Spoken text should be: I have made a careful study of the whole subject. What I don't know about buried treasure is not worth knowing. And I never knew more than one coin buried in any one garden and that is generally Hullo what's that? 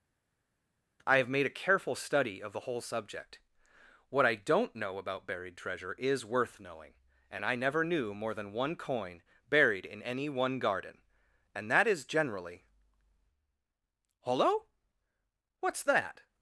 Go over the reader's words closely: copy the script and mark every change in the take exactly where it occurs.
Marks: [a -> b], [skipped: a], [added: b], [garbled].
I have made a careful study of the whole subject. What I don't know about buried treasure is [skipped: not] worth knowing. And I never knew more than one coin buried in any one garden and that is generally Hullo what's that?